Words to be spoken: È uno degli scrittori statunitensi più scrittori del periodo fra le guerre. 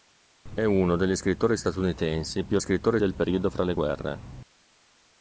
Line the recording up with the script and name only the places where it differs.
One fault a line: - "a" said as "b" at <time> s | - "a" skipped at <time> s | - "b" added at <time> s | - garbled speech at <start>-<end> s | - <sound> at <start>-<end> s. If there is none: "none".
none